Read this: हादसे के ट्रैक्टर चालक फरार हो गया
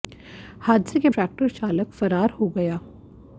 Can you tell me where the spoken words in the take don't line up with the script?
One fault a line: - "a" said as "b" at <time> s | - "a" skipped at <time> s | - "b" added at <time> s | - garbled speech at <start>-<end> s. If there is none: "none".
none